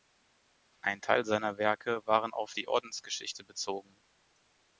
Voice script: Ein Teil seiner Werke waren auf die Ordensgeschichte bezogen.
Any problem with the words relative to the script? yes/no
no